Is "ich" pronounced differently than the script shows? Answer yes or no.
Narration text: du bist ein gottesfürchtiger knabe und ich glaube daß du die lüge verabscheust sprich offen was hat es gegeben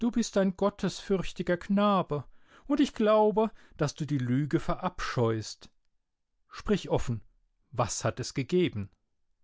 no